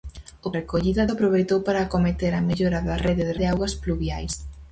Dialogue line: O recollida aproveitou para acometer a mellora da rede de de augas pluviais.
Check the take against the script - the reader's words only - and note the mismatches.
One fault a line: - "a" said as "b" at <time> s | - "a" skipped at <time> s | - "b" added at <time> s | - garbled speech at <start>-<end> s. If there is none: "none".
none